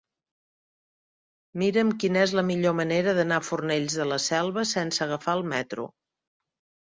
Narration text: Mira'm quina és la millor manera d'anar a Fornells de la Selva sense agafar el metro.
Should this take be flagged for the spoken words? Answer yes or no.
no